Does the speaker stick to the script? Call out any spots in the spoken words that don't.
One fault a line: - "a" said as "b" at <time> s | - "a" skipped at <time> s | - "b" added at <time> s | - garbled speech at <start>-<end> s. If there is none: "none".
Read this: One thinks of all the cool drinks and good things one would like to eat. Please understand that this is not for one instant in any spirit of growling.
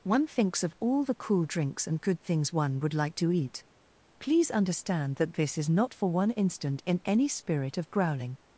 none